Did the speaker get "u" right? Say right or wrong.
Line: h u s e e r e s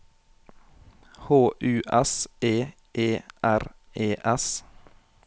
right